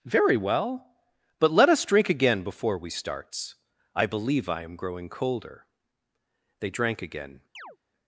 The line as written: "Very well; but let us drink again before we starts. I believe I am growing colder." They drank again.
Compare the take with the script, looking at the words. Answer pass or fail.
pass